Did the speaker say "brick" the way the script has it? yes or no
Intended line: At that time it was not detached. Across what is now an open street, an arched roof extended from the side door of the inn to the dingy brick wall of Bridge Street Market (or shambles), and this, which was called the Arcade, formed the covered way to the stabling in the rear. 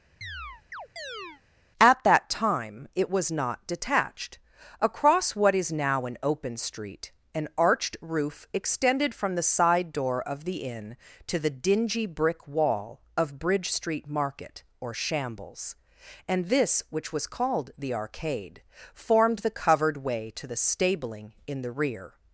yes